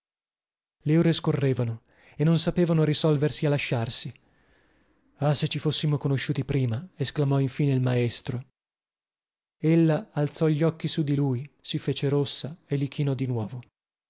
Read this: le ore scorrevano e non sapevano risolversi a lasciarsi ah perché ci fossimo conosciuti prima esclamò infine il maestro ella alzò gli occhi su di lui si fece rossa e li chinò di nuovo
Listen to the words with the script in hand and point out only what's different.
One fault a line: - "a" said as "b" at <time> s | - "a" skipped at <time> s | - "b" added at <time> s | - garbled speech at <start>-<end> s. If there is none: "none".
- "perché" said as "se" at 5.3 s